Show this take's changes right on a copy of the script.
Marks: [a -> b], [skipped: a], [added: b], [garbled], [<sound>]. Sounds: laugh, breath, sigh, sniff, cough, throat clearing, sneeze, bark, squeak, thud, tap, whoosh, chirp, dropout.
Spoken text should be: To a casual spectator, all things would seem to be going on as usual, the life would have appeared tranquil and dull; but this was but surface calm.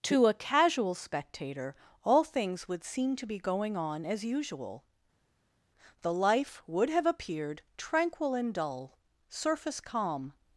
To a casual spectator, all things would seem to be going on as usual, the life would have appeared tranquil and dull; [skipped: but this was but] surface calm.